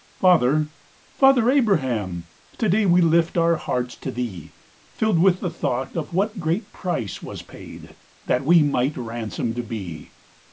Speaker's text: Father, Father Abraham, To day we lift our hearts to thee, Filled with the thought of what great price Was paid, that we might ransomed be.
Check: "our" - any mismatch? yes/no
no